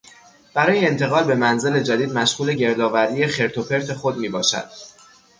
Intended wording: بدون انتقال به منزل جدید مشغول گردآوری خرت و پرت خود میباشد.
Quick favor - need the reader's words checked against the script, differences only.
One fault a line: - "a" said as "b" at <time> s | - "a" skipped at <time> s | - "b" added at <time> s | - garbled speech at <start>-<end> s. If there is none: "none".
- "بدون" said as "برای" at 0.5 s